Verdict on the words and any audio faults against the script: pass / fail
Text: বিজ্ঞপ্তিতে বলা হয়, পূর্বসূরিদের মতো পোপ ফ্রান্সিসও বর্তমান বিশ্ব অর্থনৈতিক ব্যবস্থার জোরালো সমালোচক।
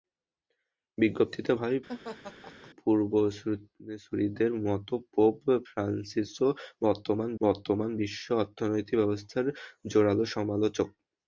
fail